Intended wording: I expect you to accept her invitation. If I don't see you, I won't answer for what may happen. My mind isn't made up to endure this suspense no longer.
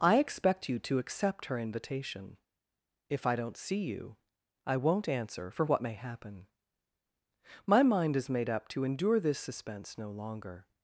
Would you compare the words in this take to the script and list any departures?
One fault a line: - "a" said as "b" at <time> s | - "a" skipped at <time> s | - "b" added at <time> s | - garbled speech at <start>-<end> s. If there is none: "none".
- "isn't" said as "is" at 8.2 s